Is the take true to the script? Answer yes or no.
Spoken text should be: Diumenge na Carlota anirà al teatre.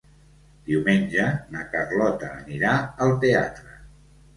yes